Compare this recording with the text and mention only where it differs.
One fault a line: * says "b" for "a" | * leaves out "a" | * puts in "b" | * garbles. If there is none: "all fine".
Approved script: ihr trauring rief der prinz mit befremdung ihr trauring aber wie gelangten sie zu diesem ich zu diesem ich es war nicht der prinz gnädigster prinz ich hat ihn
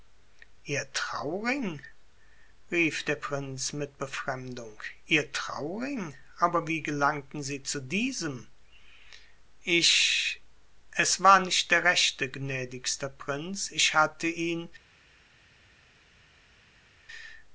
* leaves out "zu diesem ich"
* says "rechte" for "prinz"
* says "hatte" for "hat"